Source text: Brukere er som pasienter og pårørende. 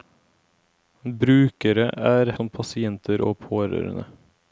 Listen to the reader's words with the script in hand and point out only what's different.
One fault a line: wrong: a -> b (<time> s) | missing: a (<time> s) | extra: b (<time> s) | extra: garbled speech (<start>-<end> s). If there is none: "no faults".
no faults